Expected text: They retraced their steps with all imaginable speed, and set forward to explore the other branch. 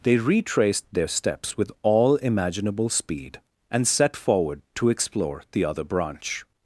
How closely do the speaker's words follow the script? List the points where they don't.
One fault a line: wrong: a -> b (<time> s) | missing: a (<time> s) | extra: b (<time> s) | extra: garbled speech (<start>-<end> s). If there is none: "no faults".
no faults